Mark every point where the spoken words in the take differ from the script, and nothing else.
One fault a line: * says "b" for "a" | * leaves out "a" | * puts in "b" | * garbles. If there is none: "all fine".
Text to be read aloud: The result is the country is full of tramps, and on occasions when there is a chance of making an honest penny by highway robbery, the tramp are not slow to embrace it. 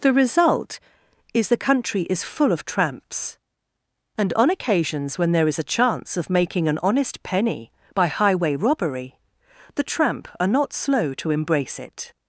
all fine